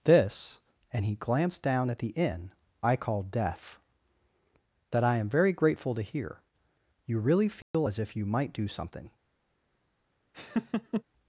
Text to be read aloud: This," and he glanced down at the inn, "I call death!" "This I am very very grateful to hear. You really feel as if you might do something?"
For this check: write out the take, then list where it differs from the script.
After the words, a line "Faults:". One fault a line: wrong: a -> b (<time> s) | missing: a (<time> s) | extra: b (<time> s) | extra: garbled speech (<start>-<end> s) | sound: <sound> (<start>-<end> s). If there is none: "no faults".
This," and he glanced down at the inn, "I call death!" "That I am very grateful to hear. You really feel as if you might do something?"
Faults:
wrong: This -> That (4.9 s)
missing: very (5.5 s)
sound: dropout (7.6-7.7 s)
sound: laugh (10.3-11.0 s)